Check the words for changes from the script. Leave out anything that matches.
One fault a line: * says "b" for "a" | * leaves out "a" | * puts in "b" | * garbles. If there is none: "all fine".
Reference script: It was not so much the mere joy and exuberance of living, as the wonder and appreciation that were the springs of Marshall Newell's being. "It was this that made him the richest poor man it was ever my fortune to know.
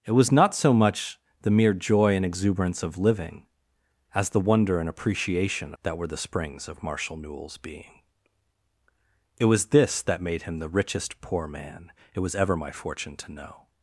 all fine